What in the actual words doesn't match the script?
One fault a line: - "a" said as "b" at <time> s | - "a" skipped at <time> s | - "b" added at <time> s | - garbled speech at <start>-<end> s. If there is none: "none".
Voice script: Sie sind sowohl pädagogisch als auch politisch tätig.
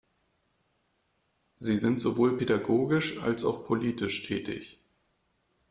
none